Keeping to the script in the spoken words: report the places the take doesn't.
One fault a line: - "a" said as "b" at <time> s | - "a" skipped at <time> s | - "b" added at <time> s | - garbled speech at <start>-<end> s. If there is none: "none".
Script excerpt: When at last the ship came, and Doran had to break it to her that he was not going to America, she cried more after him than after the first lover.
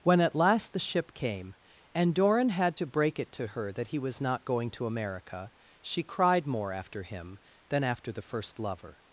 none